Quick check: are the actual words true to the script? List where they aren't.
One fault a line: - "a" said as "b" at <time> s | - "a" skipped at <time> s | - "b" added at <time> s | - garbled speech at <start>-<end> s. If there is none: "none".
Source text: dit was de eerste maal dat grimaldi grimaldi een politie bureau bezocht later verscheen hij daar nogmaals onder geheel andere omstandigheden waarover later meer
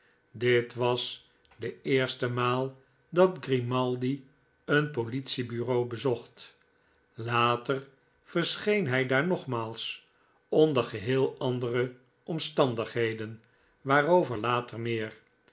- "grimaldi" skipped at 4.3 s